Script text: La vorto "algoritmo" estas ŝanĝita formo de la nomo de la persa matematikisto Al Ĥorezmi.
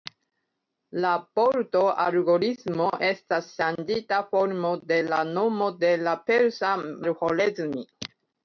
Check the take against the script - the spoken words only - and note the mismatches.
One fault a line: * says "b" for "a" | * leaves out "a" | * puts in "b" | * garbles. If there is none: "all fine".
* leaves out "matematikisto"